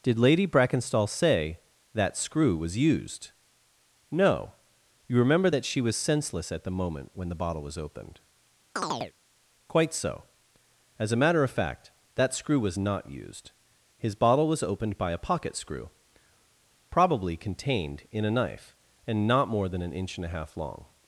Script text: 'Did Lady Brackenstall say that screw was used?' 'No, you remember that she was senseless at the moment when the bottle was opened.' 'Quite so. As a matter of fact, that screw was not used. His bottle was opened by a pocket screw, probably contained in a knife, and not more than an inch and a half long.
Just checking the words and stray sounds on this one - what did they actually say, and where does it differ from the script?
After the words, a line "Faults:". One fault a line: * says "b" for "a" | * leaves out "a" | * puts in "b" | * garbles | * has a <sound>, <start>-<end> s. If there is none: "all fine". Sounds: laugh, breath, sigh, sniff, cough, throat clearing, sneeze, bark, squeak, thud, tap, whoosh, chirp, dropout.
'Did Lady Brackenstall say that screw was used?' 'No, you remember that she was senseless at the moment when the bottle was opened.' 'Quite so. As a matter of fact, that screw was not used. His bottle was opened by a pocket screw, probably contained in a knife, and not more than an inch and a half long.
Faults:
* has a chirp, 8.8-9.1 s